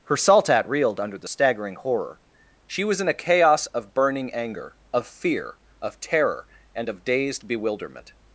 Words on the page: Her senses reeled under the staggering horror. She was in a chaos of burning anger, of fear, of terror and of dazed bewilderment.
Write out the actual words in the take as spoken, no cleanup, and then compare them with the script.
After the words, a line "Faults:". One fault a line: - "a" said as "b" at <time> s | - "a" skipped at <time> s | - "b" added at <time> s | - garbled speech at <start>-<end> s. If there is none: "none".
Her saltat reeled under the staggering horror. She was in a chaos of burning anger, of fear, of terror and of dazed bewilderment.
Faults:
- "senses" said as "saltat" at 0.1 s